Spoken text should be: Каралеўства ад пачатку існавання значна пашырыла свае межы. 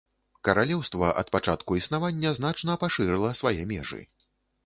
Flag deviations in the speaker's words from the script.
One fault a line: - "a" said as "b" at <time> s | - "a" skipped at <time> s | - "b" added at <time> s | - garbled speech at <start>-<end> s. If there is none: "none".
none